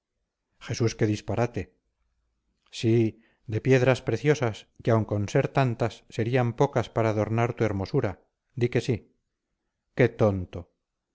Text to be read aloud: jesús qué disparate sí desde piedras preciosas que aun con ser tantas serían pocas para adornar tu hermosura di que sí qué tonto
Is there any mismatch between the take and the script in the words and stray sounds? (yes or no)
yes